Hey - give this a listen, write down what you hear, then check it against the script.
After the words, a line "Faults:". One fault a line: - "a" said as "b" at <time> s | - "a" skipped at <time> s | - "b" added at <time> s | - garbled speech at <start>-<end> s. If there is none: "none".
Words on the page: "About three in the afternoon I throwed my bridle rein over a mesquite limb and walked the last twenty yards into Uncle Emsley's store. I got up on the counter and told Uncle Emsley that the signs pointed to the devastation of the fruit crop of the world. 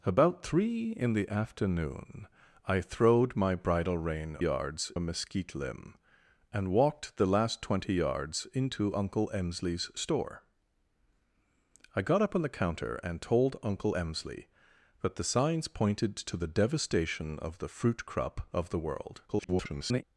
"About three in the afternoon I throwed my bridle rein yards a mesquite limb and walked the last twenty yards into Uncle Emsley's store. I got up on the counter and told Uncle Emsley that the signs pointed to the devastation of the fruit crop of the world. [garbled]
Faults:
- "over" said as "yards" at 4.4 s
- garbled speech at 19.3-20.0 s